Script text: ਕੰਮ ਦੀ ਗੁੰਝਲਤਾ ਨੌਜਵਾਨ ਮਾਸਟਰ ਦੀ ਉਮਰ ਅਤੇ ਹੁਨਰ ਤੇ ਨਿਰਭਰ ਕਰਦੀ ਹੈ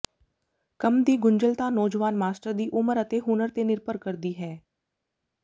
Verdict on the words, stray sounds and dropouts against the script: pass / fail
pass